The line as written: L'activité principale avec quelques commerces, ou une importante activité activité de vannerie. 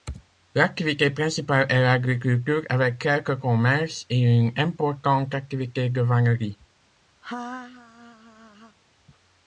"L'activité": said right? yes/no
yes